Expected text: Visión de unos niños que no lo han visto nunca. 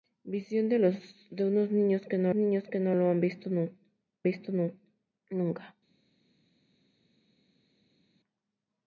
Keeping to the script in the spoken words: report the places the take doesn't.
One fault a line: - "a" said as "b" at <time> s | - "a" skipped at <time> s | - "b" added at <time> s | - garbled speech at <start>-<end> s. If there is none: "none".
- "niños que no" added at 2.3 s
- "visto" added at 4.2 s